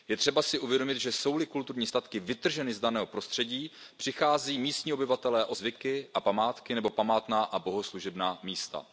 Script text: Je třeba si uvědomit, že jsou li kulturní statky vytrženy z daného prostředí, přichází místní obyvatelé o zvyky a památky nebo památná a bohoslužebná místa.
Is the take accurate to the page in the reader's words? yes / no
yes